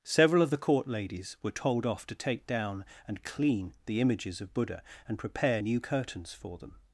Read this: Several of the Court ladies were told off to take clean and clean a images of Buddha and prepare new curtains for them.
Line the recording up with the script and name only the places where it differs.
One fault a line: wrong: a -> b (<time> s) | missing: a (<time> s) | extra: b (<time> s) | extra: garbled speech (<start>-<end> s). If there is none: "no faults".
wrong: clean -> down (2.5 s)
wrong: a -> the (3.9 s)